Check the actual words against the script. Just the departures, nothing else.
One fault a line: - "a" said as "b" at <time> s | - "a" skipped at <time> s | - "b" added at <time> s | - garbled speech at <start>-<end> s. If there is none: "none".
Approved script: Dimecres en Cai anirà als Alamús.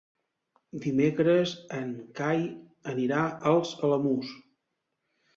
none